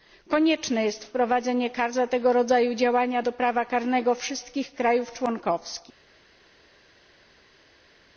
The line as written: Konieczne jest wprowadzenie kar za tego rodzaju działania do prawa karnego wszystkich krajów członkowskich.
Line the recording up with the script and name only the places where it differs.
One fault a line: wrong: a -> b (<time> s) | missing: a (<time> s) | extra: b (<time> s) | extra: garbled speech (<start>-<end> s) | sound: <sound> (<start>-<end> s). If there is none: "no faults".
no faults